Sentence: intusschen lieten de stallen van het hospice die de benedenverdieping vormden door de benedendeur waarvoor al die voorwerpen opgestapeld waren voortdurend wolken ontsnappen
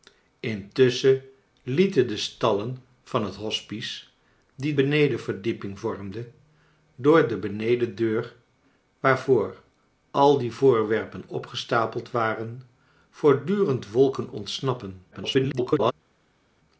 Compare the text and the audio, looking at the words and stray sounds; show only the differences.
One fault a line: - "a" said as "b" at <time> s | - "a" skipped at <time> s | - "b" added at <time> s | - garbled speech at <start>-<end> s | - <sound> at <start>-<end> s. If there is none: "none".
- "de" skipped at 4.7 s
- garbled speech at 15.1-15.9 s